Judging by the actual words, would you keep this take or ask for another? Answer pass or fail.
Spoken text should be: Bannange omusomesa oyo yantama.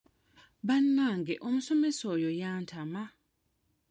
pass